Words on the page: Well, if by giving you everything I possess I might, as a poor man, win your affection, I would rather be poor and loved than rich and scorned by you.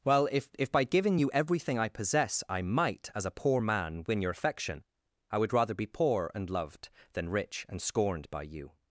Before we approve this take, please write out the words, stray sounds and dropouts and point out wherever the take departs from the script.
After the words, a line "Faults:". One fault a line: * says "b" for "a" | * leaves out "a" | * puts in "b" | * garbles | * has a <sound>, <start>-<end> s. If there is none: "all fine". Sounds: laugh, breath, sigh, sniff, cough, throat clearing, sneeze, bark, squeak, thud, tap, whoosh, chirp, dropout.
Well, if if by giving you everything I possess I might, as a poor man, win your affection, I would rather be poor and loved than rich and scorned by you.
Faults:
* puts in "if"